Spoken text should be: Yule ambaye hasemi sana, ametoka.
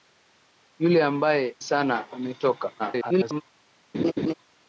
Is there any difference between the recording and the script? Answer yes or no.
yes